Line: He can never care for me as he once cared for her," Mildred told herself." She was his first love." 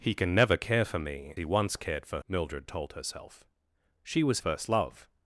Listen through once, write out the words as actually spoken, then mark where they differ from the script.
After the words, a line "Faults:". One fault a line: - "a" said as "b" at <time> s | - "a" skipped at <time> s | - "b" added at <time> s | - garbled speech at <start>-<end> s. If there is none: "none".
He can never care for me he once cared for," Mildred told herself." She was first love."
Faults:
- "as" skipped at 1.4 s
- "her" skipped at 2.2 s
- "his" skipped at 4.4 s